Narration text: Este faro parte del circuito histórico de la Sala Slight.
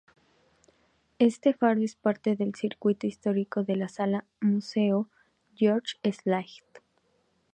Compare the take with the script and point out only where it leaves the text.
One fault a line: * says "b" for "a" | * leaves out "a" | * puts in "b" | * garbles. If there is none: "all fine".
* puts in "es"
* puts in "Museo George"